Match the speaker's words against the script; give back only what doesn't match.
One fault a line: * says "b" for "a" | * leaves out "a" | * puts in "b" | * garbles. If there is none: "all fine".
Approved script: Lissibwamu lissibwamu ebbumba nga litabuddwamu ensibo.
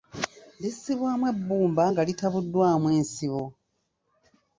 * leaves out "lissibwamu"